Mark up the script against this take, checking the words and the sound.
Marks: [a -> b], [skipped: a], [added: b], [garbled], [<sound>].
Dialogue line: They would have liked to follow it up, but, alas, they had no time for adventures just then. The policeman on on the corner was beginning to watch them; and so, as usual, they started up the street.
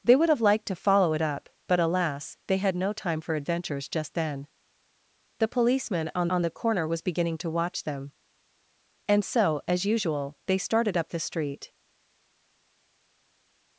They would have liked to follow it up, but, alas, they had no time for adventures just then. The policeman on on the corner was beginning to watch them; and so, as usual, they started up the street.